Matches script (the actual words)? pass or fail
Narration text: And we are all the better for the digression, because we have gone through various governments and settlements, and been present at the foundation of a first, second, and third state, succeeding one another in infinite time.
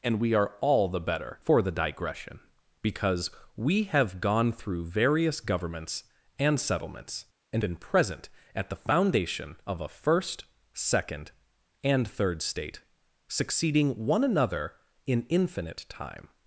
pass